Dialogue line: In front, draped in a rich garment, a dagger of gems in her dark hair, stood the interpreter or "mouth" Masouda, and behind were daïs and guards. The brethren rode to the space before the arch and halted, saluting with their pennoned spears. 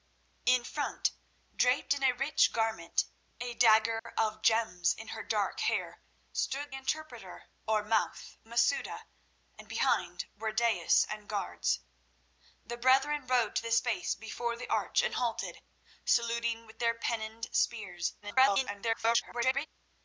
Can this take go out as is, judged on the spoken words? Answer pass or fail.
fail